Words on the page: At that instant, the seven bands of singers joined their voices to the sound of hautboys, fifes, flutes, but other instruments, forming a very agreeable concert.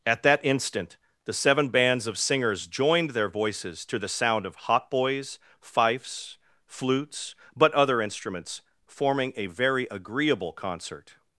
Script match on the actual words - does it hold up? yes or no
yes